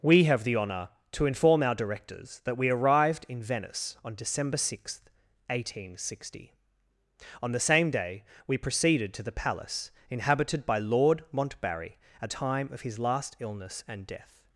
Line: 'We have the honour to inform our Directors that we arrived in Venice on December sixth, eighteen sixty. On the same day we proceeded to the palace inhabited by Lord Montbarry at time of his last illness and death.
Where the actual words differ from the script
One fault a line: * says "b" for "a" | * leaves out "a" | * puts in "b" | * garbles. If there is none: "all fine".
all fine